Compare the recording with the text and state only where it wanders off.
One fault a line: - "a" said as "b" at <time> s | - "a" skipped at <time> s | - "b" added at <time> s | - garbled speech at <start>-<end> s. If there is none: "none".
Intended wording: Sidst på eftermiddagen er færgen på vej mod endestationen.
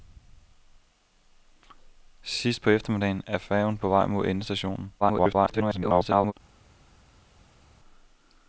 - garbled speech at 5.0-6.3 s